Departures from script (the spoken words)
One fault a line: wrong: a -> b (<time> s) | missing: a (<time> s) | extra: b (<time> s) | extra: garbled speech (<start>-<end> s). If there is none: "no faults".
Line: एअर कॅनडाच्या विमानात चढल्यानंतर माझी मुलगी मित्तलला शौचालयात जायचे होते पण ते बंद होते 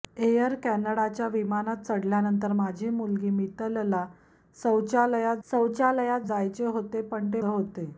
extra: शौचालयात (5.5 s)
missing: बंद (7.4 s)